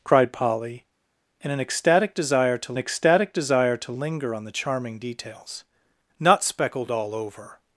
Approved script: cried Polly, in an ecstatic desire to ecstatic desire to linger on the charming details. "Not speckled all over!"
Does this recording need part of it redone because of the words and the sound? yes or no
no